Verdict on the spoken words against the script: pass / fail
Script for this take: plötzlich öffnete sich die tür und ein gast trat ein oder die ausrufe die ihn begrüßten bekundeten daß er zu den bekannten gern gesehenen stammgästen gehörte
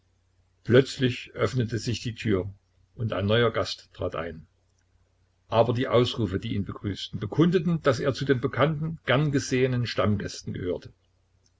fail